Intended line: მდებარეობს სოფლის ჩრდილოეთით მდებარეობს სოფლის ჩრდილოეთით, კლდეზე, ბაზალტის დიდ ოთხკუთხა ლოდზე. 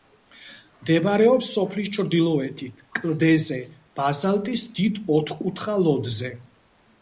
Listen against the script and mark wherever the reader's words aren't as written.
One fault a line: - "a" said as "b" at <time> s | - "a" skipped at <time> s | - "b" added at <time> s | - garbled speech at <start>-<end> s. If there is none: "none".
- "მდებარეობს სოფლის ჩრდილოეთით" skipped at 2.8 s